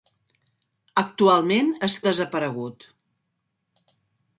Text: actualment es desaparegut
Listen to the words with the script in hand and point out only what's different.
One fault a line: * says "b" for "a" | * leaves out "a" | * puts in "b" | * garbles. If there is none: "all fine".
all fine